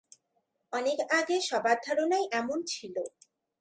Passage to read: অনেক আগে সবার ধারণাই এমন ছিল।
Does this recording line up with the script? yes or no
yes